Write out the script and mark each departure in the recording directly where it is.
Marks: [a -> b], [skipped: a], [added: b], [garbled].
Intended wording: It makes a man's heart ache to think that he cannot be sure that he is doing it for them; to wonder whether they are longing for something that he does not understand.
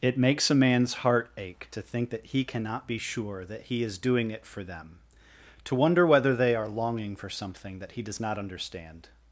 It makes a man's heart ache to think that he cannot be sure that he is doing it for them; to wonder whether they are longing for something that he does not understand.